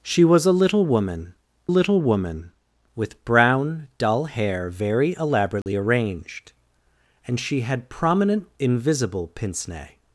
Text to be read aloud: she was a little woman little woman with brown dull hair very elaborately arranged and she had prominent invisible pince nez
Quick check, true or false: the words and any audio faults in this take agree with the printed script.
false